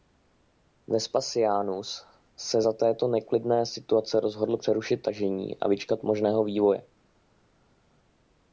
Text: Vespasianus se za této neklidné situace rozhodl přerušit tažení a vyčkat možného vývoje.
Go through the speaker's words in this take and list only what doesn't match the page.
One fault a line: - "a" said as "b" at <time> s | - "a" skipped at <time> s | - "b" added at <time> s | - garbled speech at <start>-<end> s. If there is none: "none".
none